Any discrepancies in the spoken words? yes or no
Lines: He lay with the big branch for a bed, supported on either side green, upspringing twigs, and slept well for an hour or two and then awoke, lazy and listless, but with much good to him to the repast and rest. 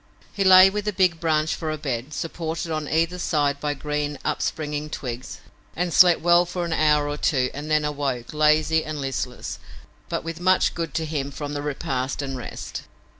yes